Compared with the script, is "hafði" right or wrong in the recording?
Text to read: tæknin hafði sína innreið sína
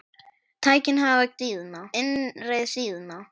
right